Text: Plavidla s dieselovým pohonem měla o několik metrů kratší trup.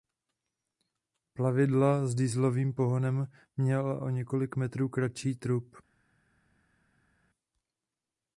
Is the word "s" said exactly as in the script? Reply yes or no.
yes